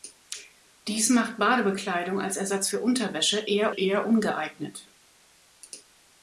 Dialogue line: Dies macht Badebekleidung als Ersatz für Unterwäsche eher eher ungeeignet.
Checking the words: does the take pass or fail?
pass